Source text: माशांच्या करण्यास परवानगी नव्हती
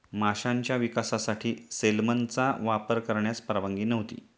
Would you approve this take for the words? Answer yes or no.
no